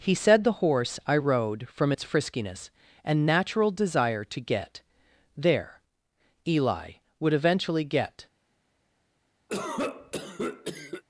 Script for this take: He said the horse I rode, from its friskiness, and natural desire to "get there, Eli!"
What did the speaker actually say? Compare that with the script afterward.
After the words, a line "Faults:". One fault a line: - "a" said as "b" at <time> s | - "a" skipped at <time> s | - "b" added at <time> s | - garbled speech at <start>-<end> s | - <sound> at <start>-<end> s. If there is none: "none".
He said the horse I rode, from its friskiness, and natural desire to "get there, Eli!" would eventually get
Faults:
- "would eventually get" added at 7.2 s
- cough at 9.5-11.0 s